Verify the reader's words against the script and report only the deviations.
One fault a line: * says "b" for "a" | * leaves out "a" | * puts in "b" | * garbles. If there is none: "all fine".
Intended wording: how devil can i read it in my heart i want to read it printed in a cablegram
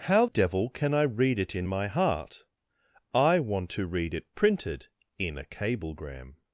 all fine